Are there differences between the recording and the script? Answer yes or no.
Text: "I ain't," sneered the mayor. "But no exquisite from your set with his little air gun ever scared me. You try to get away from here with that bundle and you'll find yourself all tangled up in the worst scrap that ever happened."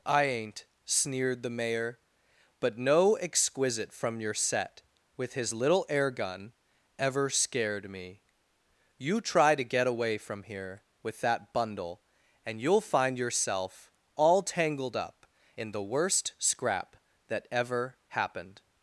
no